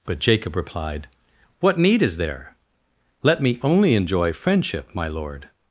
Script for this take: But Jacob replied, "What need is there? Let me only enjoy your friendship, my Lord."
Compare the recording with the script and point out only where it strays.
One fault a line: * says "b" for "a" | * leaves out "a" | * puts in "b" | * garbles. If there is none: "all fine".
* leaves out "your"